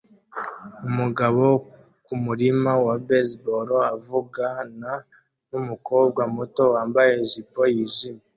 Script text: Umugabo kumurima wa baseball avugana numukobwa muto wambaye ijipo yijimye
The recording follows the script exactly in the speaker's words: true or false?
true